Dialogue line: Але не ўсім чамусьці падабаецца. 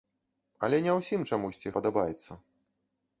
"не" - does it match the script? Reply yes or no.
yes